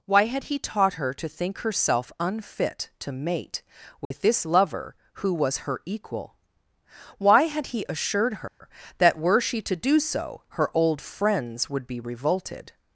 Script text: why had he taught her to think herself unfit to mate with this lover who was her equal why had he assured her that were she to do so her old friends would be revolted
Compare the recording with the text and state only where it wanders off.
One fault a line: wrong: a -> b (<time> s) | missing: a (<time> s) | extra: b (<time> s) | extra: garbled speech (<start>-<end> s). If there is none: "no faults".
no faults